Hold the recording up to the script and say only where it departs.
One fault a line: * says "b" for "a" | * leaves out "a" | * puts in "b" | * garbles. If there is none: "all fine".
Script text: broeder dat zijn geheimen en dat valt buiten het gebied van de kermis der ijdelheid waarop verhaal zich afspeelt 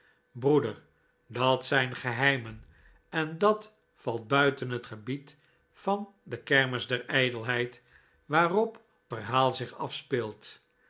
all fine